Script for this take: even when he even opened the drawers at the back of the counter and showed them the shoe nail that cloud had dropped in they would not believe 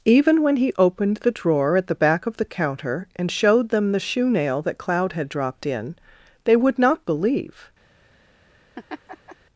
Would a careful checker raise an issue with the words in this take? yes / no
yes